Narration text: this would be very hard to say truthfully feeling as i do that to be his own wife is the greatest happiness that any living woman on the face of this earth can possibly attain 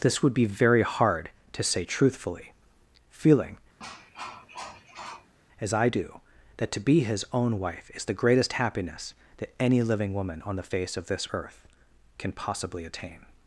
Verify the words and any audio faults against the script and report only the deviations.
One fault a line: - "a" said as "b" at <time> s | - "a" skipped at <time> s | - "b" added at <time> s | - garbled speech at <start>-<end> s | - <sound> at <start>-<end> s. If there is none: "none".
- cough at 3.8-5.3 s